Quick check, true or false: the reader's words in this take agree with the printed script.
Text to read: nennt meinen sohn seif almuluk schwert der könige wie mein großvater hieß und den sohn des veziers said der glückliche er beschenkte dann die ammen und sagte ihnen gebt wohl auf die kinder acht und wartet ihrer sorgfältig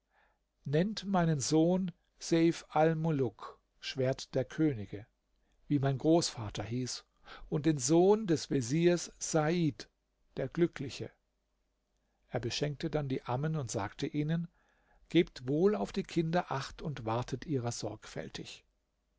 true